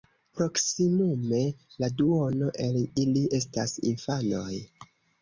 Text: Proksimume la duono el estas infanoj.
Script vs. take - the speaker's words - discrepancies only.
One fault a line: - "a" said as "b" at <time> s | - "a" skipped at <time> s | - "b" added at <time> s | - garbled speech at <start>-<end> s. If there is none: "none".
- "ili" added at 3.0 s